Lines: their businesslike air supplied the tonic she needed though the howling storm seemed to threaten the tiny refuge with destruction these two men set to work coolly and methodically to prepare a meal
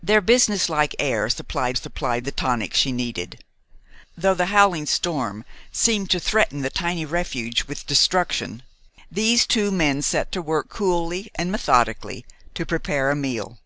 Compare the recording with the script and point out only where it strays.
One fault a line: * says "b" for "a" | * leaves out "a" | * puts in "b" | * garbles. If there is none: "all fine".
* puts in "supplied"